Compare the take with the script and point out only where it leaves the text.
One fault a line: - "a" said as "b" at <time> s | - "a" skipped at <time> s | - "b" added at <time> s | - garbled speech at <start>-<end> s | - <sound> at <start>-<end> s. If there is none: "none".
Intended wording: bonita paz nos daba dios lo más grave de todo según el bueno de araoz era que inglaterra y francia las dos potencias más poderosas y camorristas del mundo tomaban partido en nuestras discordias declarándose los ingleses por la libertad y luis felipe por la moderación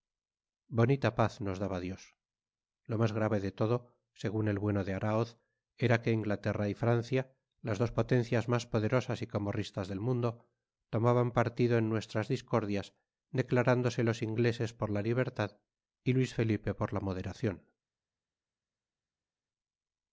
none